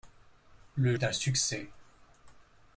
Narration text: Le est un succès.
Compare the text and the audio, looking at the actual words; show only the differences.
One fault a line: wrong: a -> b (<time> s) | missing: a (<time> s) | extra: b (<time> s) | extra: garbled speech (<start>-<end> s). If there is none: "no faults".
no faults